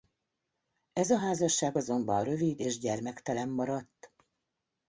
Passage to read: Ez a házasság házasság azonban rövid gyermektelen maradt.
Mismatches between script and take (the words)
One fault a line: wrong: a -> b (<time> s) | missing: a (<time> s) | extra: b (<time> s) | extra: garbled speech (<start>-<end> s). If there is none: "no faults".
missing: házasság (1.8 s)
extra: és (2.6 s)